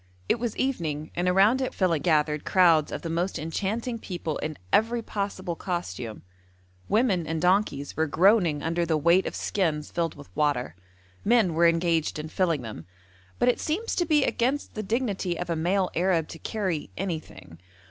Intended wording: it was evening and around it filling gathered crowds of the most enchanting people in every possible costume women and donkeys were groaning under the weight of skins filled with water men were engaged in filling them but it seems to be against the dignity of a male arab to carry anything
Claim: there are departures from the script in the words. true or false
false